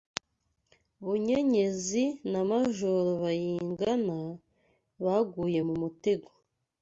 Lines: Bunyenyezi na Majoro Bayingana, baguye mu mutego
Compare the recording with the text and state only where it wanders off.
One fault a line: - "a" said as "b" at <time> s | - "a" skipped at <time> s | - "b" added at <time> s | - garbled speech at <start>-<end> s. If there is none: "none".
none